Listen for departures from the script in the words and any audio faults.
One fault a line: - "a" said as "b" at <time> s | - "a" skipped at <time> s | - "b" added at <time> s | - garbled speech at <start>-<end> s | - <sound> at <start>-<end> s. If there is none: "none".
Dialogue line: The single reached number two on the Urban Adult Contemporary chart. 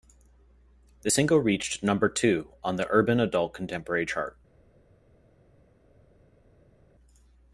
none